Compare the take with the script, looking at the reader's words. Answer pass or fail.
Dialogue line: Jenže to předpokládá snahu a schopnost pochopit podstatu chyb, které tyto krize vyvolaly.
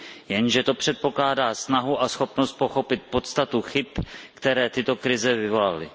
pass